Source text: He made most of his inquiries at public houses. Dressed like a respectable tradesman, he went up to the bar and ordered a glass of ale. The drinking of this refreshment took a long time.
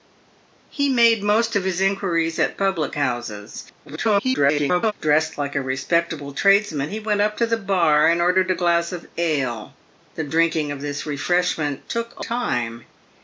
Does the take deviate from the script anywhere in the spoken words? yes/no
yes